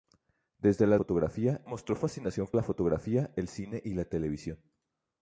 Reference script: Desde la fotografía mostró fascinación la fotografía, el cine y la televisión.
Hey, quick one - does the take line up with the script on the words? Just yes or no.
yes